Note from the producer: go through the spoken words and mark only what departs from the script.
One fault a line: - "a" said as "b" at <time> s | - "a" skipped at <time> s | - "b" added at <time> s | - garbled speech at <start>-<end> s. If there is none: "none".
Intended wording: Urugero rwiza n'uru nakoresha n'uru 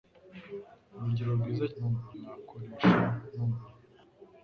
none